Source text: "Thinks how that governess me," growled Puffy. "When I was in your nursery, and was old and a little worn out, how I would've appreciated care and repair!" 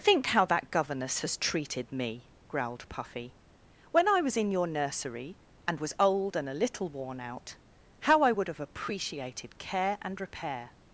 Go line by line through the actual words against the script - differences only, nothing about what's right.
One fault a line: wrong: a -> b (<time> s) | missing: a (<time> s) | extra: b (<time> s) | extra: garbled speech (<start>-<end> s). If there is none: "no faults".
wrong: Thinks -> Think (0.0 s)
extra: has treated (1.2 s)